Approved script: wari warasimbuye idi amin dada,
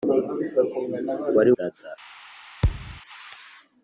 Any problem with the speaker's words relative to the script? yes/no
yes